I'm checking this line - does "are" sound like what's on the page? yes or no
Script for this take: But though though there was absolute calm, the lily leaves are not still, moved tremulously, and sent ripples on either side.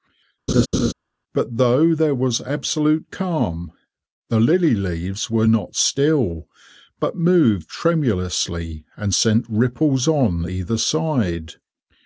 no